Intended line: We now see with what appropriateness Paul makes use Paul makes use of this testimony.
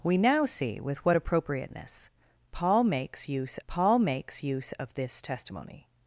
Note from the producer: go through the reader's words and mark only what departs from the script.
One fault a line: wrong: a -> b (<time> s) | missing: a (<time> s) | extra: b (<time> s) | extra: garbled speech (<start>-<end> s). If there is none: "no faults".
no faults